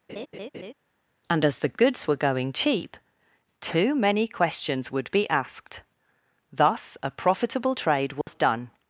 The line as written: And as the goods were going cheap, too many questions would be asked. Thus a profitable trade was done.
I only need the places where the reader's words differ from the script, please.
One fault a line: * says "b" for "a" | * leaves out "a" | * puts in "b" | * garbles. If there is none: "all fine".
all fine